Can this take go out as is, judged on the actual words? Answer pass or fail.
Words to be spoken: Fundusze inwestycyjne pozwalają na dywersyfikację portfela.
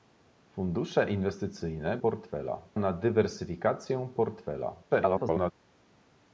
fail